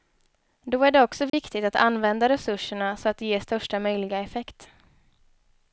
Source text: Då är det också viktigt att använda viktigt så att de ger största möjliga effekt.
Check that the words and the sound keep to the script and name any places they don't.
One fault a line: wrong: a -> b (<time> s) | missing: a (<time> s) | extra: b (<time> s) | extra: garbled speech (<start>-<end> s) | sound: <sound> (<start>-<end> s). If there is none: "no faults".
sound: dropout (1.3-1.3 s)
wrong: viktigt -> resurserna (2.3 s)